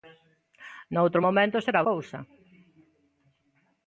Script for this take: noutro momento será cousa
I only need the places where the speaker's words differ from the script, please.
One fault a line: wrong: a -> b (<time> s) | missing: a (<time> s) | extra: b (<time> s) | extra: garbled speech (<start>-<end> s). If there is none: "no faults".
no faults